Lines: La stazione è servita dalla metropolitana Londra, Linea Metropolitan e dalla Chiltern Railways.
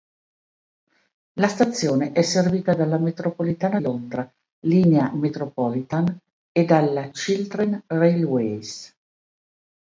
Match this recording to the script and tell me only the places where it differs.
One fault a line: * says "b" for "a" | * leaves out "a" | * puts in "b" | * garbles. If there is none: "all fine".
all fine